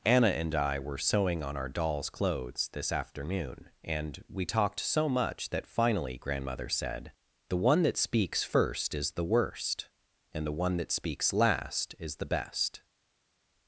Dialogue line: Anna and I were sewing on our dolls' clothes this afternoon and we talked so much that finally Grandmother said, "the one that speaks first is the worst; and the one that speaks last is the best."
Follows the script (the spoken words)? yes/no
yes